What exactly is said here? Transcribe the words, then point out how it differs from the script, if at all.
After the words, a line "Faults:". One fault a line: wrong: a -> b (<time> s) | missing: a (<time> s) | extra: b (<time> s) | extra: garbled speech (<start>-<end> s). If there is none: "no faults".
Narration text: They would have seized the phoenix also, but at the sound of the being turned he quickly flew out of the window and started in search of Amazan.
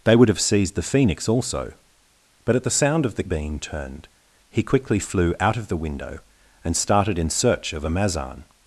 They would have seized the phoenix also, but at the sound of the being turned he quickly flew out of the window and started in search of Amazan.
Faults:
no faults